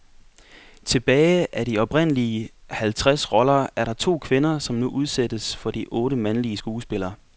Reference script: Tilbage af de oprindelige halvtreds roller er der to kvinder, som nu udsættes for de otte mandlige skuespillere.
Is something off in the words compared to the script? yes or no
no